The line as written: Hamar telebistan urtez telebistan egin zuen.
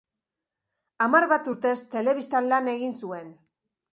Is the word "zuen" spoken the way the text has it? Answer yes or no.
yes